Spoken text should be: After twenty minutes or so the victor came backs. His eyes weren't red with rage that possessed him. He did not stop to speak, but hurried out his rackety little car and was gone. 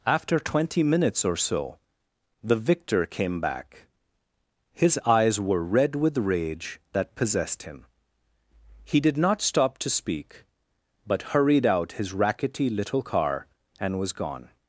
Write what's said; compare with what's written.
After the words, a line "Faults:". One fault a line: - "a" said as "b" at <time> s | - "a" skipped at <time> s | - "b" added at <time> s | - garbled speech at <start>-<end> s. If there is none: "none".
After twenty minutes or so the victor came back. His eyes were red with rage that possessed him. He did not stop to speak, but hurried out his rackety little car and was gone.
Faults:
- "backs" said as "back" at 3.4 s
- "weren't" said as "were" at 5.4 s